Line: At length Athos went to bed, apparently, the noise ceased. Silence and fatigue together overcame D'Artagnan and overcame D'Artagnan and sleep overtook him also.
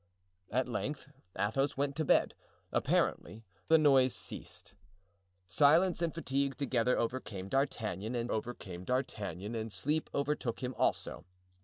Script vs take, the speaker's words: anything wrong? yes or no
no